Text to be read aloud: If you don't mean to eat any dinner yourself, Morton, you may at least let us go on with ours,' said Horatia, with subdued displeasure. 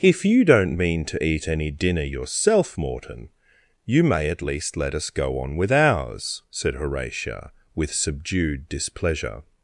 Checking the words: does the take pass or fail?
pass